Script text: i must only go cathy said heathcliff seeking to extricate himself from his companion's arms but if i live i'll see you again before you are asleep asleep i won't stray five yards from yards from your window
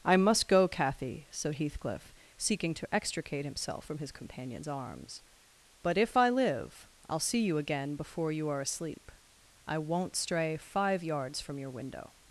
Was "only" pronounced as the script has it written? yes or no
no